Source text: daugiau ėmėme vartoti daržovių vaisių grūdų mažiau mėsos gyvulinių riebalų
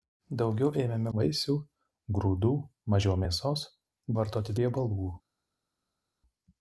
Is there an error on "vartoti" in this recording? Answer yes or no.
yes